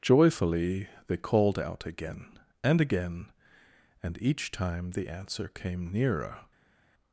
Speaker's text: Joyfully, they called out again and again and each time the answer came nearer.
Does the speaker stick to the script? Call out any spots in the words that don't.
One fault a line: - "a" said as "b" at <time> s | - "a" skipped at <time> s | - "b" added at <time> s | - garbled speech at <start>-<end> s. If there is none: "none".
none